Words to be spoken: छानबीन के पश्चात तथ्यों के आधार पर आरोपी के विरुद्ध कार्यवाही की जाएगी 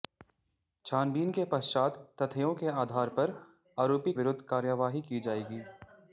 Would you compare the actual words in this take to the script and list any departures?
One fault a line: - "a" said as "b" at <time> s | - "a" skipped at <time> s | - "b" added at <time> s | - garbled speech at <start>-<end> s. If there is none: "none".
- "के" skipped at 4.1 s